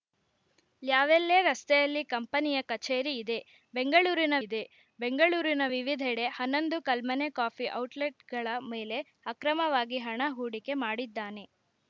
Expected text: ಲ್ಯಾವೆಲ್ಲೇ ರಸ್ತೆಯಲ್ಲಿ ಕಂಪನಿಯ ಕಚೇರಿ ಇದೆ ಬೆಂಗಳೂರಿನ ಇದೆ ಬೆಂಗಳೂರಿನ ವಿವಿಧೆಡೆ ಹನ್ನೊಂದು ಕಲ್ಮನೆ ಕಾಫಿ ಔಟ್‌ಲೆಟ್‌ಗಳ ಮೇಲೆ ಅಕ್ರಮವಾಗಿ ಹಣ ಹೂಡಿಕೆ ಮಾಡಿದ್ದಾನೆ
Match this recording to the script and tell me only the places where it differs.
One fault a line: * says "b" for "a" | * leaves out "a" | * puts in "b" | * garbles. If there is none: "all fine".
all fine